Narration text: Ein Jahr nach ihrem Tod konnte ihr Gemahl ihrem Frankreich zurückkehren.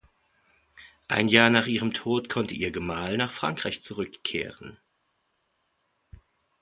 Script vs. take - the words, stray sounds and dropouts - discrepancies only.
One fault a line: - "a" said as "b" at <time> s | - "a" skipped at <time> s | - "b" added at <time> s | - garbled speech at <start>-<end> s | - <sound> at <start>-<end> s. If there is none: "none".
- "ihrem" said as "nach" at 3.2 s